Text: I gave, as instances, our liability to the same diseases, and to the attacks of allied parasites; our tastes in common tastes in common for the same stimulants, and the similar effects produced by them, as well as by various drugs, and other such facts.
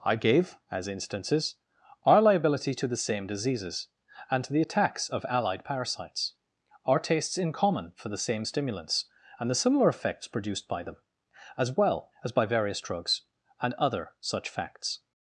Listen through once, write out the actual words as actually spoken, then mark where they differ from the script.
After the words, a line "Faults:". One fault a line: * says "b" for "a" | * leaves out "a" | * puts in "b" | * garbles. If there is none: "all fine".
I gave, as instances, our liability to the same diseases, and to the attacks of allied parasites; our tastes in common for the same stimulants, and the similar effects produced by them, as well as by various drugs, and other such facts.
Faults:
* leaves out "tastes in common"